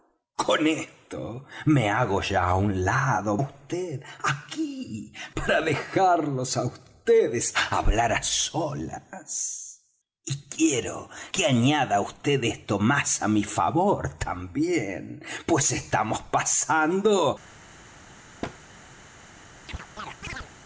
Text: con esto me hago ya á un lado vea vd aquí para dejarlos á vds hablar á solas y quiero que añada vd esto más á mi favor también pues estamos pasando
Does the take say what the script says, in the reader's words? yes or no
no